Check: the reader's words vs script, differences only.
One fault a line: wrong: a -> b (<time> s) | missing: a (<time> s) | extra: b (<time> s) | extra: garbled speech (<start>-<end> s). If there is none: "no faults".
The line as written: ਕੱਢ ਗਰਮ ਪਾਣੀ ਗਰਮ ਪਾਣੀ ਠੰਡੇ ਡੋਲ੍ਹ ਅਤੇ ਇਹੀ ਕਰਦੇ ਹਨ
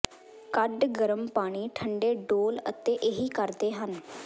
missing: ਗਰਮ ਪਾਣੀ (1.7 s)